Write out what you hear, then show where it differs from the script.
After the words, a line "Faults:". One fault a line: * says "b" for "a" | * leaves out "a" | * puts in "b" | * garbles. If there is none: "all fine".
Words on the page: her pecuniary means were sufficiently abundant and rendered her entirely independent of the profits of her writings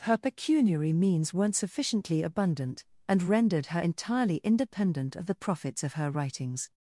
her pecuniary means weren't sufficiently abundant and rendered her entirely independent of the profits of her writings
Faults:
* says "weren't" for "were"